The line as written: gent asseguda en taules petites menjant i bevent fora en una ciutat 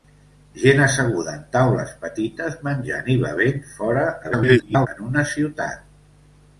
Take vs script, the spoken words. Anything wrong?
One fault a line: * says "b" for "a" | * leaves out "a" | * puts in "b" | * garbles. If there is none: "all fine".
* garbles